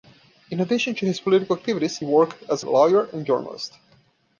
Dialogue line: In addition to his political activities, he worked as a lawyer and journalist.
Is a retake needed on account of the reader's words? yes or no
yes